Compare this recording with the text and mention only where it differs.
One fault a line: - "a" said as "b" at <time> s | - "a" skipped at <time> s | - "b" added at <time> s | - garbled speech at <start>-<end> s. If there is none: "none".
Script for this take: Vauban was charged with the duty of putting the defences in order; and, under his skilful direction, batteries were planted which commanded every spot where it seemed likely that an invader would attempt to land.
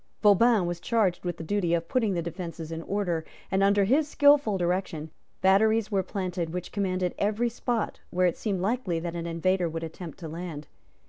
none